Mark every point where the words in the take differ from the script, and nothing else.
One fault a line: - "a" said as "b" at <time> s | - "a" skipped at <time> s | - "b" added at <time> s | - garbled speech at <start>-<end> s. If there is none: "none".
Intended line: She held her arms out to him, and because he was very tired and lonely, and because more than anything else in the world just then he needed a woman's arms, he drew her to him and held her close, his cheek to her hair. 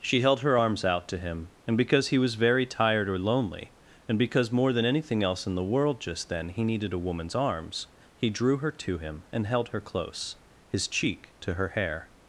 - "and" said as "or" at 3.1 s